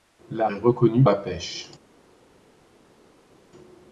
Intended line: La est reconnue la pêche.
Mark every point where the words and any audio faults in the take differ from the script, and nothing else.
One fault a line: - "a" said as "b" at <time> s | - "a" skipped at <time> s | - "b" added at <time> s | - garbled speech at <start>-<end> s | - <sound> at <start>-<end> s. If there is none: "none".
none